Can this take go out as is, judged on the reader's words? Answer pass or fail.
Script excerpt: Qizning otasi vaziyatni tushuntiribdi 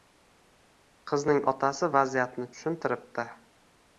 pass